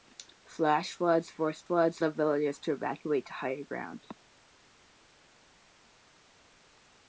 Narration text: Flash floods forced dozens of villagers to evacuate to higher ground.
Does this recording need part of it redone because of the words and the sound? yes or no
yes